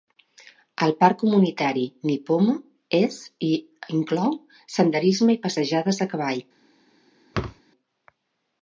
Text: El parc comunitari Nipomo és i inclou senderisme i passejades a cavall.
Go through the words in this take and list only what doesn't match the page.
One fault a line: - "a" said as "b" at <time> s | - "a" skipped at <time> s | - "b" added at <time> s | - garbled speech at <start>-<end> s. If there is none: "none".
none